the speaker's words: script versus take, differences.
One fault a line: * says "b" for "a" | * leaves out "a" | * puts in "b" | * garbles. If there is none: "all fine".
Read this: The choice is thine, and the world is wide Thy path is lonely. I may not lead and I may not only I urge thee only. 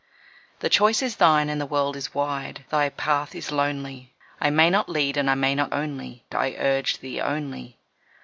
all fine